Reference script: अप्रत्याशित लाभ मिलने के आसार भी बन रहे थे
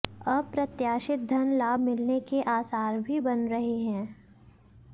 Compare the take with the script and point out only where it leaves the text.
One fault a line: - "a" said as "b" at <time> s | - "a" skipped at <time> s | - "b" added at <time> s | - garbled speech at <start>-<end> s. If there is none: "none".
- "धन" added at 1.3 s
- "थे" said as "हैं" at 3.8 s